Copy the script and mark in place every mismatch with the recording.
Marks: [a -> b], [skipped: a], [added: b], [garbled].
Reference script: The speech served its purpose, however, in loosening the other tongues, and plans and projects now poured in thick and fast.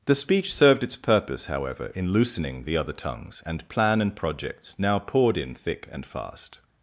The speech served its purpose, however, in loosening the other tongues, and [plans -> plan] and projects now poured in thick and fast.